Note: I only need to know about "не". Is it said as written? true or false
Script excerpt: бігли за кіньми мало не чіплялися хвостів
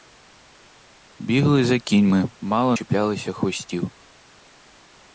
false